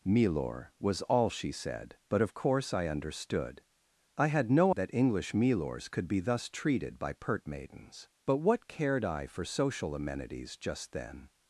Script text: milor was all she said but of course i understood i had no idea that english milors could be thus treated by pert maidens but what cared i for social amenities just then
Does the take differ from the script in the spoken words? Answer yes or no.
yes